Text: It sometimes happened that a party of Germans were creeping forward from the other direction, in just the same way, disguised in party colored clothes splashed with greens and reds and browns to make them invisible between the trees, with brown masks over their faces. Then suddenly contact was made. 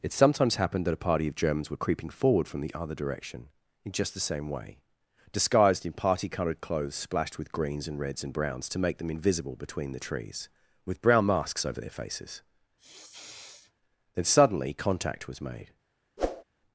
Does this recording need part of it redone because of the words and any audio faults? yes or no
yes